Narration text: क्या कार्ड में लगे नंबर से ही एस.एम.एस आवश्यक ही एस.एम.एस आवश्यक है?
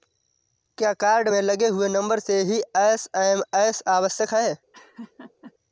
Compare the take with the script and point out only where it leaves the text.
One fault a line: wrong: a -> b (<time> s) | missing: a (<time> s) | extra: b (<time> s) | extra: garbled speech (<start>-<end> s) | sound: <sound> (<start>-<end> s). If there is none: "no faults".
extra: हुए (1.7 s)
missing: ही एस.एम.एस आवश्यक (4.3 s)
sound: laugh (4.7-5.5 s)